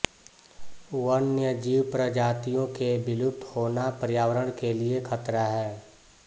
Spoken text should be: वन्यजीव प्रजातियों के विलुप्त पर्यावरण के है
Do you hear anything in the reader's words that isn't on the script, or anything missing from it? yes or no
yes